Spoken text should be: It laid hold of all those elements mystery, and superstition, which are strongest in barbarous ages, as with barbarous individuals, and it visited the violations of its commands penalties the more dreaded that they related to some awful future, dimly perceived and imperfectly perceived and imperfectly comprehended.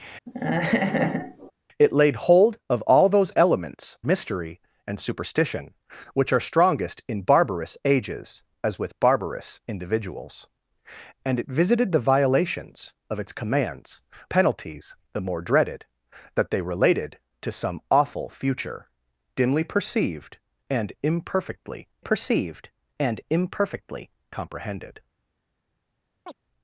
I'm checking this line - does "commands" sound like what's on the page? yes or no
yes